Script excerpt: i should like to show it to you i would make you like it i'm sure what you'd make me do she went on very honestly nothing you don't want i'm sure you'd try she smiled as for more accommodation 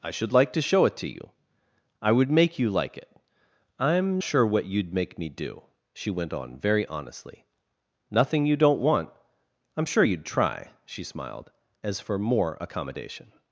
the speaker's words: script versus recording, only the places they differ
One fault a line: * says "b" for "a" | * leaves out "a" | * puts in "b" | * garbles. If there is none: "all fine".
all fine